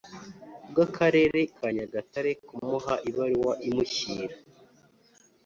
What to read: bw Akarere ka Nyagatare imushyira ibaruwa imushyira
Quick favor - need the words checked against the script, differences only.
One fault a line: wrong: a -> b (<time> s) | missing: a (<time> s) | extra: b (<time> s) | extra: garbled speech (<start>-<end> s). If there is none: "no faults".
wrong: imushyira -> kumuha (2.5 s)